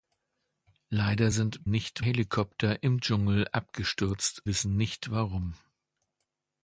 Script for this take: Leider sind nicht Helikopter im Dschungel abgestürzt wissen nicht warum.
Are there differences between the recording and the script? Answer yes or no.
no